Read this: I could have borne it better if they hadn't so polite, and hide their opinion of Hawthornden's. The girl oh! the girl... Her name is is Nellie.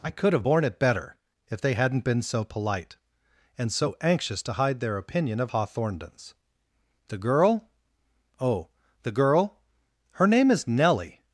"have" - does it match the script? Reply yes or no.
yes